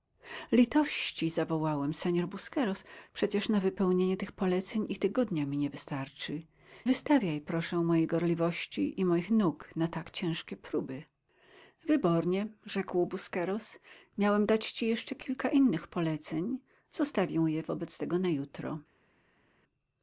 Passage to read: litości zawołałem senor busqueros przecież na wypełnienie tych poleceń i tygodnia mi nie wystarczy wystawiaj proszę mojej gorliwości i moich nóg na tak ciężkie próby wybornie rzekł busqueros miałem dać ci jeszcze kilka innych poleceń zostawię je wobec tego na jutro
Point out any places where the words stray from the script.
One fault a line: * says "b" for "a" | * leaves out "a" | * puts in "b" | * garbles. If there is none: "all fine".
all fine